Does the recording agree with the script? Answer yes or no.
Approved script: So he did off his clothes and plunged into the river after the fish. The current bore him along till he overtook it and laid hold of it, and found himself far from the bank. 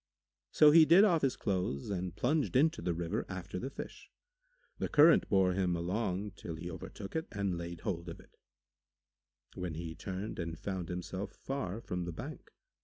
no